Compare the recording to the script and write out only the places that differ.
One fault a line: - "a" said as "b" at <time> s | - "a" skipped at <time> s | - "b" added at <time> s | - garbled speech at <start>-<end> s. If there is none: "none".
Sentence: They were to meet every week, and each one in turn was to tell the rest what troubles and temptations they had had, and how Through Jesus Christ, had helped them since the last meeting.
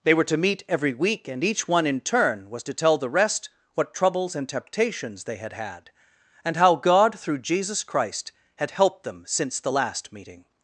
- "God" added at 6.8 s